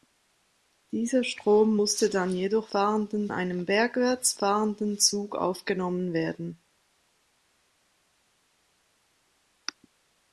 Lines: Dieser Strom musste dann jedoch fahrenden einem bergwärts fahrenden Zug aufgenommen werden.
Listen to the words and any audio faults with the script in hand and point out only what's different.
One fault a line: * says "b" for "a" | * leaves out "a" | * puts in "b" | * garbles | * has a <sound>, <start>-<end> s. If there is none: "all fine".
all fine